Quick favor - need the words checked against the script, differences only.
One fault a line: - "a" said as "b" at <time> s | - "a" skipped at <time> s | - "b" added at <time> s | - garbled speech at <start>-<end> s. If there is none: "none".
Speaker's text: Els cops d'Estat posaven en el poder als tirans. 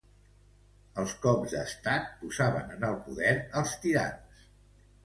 none